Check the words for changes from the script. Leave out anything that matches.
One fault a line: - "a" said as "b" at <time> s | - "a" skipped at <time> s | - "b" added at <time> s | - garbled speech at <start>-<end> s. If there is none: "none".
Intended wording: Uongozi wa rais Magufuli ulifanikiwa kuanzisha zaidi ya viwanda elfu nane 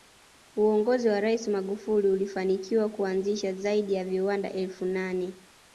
none